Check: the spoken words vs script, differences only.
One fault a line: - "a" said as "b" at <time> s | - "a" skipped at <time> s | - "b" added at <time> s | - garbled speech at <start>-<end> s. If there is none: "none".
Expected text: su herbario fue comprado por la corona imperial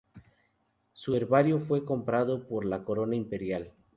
none